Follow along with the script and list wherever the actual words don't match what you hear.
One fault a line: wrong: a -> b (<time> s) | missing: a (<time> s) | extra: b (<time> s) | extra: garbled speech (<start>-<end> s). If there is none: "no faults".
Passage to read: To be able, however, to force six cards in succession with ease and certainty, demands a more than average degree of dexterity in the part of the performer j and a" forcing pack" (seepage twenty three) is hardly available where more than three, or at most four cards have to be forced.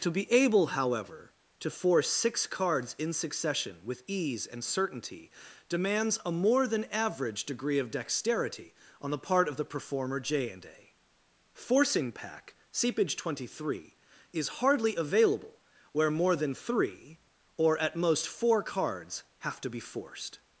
wrong: in -> on (9.0 s)